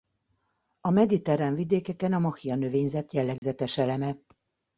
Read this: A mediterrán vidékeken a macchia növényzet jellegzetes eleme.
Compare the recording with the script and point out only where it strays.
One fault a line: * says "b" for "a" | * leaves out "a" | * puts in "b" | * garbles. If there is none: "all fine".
all fine